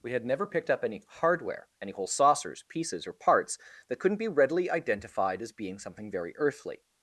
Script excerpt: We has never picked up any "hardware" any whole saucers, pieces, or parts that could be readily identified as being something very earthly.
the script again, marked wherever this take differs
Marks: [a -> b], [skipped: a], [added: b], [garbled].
We [has -> had] never picked up any "hardware" any whole saucers, pieces, or parts that [could -> couldn't] be readily identified as being something very earthly.